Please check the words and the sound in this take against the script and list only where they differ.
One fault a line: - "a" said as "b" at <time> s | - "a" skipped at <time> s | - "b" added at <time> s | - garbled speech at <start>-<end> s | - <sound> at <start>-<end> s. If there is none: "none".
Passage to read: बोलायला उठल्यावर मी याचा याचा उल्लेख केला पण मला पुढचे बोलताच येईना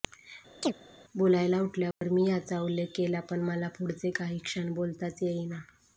- chirp at 0.6-0.7 s
- dropout at 1.9-2.0 s
- "याचा" skipped at 2.6 s
- "काही क्षण" added at 4.1 s